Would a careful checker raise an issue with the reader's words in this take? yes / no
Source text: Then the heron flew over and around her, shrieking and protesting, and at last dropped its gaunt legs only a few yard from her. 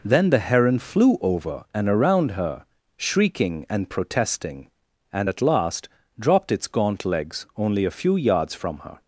yes